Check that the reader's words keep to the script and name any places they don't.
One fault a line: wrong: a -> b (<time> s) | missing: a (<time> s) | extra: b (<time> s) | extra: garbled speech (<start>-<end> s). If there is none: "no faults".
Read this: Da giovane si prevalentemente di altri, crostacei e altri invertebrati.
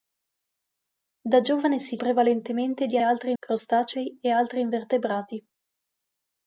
no faults